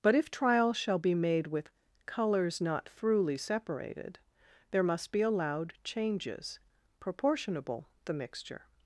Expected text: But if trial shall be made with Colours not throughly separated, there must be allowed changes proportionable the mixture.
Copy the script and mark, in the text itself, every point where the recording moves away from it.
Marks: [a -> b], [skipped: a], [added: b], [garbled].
But if trial shall be made with Colours not throughly separated, there must be allowed changes proportionable the mixture.